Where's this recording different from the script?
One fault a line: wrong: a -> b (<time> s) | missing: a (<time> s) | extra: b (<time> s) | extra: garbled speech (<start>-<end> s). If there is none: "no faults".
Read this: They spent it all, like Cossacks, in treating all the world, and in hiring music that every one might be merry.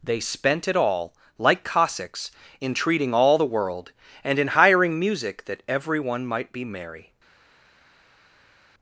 no faults